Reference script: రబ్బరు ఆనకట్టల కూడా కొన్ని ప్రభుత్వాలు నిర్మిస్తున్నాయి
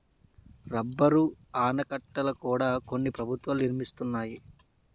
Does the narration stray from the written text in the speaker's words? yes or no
no